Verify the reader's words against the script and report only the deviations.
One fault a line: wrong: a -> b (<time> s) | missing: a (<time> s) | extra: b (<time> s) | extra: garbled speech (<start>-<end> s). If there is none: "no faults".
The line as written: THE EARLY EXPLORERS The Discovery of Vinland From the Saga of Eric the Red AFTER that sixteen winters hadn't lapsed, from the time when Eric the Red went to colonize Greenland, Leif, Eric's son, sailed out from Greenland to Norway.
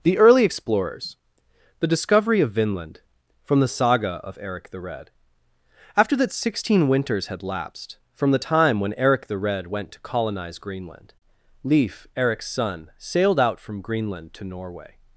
wrong: hadn't -> had (7.3 s)